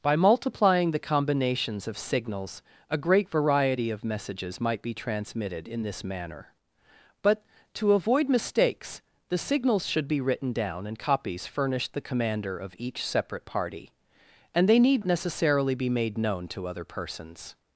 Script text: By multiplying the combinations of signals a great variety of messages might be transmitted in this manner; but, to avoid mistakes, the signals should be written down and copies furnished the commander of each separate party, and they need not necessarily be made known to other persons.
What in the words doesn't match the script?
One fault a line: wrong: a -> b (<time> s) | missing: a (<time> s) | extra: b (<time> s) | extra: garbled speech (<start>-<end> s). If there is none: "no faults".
missing: not (15.0 s)